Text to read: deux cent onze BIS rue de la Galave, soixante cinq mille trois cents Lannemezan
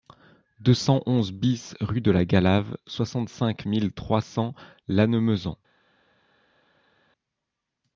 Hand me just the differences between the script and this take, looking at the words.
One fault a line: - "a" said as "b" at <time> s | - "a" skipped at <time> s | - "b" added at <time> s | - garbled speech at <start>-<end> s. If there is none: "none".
none